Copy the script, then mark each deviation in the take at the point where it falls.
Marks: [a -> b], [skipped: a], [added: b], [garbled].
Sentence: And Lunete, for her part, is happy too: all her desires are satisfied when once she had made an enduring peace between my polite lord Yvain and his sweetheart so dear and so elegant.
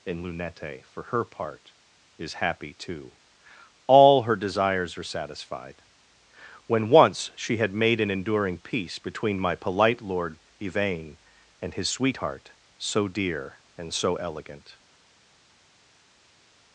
And Lunete, for her part, is happy too: all her desires are satisfied when once she had made an enduring peace between my polite lord Yvain and his sweetheart so dear and so elegant.